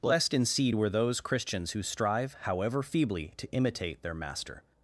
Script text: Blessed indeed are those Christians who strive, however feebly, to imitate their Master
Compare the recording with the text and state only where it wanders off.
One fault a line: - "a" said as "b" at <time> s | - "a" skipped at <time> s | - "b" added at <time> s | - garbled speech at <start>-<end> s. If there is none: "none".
- "are" said as "were" at 0.7 s